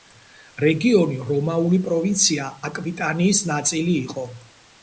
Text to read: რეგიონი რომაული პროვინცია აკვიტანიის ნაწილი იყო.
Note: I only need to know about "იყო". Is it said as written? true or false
true